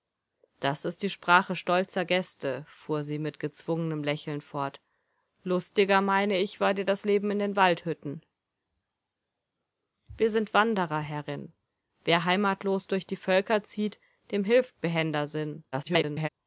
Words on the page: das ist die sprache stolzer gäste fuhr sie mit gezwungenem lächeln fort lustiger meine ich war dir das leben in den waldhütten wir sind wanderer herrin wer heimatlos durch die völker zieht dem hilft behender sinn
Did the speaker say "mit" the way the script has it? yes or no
yes